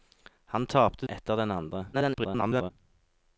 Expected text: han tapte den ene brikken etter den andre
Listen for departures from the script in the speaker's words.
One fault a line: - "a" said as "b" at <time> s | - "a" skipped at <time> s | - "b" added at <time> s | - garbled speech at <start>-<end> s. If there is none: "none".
- "den ene brikken" skipped at 1.1 s
- garbled speech at 1.9-2.7 s